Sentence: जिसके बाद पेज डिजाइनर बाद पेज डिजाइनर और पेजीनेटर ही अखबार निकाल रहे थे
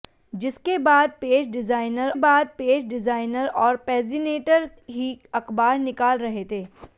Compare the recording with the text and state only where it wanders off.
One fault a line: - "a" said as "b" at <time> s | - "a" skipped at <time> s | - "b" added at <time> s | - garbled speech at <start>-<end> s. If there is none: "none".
none